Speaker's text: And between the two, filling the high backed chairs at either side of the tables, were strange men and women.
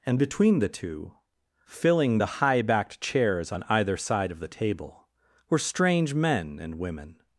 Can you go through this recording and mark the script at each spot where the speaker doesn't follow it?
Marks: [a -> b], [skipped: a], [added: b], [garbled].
And between the two, filling the high backed chairs [at -> on] either side of the [tables, -> table] were strange men and women.